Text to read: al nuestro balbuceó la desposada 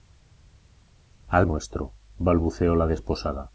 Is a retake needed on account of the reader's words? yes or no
no